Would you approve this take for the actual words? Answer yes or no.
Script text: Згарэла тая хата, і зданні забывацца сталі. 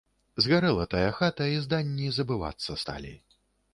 yes